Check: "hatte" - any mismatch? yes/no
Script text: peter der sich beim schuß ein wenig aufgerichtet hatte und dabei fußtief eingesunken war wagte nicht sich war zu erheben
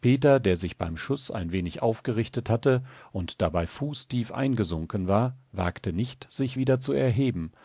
no